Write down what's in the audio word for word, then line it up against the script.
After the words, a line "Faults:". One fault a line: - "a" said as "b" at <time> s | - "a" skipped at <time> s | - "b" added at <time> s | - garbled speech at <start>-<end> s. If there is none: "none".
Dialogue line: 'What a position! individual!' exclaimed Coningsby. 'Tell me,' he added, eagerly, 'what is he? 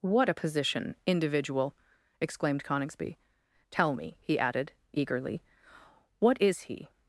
'What a position! individual!' exclaimed Coningsby. 'Tell me,' he added, eagerly, 'what is he?
Faults:
none